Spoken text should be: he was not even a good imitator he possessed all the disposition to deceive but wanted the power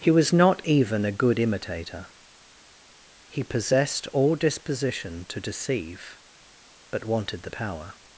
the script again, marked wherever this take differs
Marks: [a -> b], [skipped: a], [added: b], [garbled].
he was not even a good imitator he possessed all [skipped: the] disposition to deceive but wanted the power